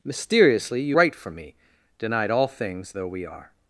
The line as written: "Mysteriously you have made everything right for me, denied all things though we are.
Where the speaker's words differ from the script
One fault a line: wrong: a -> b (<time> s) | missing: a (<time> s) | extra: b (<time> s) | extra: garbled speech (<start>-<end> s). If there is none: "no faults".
missing: have made everything (1.0 s)